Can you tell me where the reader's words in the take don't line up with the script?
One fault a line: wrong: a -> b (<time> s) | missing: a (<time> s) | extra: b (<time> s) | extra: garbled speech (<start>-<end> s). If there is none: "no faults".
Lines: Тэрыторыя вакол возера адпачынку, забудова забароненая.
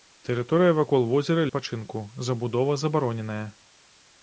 no faults